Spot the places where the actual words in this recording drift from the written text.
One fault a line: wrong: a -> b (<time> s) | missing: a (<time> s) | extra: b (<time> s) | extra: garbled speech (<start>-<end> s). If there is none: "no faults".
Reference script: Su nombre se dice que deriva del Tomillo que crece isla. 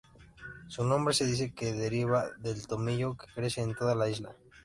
extra: en toda la (3.6 s)